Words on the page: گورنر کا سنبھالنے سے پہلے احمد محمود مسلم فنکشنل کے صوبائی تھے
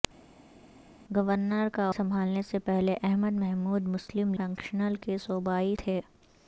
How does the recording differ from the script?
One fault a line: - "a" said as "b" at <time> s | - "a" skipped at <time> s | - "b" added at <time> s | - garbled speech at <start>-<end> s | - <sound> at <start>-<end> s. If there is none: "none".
none